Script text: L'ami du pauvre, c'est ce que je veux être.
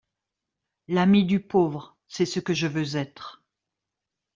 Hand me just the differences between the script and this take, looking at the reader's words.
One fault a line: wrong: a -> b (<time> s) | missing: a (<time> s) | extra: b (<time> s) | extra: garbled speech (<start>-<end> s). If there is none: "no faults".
no faults